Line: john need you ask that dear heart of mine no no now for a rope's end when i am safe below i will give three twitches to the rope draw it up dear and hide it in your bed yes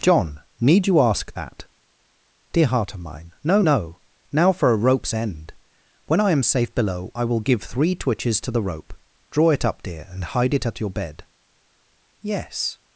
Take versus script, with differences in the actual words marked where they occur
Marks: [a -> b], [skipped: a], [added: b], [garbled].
john need you ask that dear heart of mine no no now for a rope's end when i am safe below i will give three twitches to the rope draw it up dear and hide it [in -> at] your bed yes